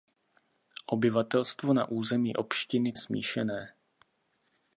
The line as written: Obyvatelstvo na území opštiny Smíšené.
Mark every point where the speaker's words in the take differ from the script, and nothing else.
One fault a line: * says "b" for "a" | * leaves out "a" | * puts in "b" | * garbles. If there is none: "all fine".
all fine